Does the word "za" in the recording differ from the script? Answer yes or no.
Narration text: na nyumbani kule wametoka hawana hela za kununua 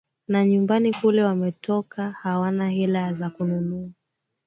no